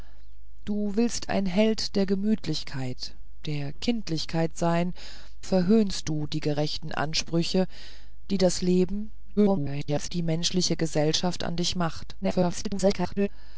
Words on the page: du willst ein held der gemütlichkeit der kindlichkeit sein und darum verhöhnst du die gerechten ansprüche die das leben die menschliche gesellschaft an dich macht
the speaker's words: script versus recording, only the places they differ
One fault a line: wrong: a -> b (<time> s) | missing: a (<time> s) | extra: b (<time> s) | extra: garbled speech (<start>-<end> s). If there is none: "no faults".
missing: und darum (5.0 s)
extra: garbled speech (9.4-10.1 s)
extra: garbled speech (12.2-13.3 s)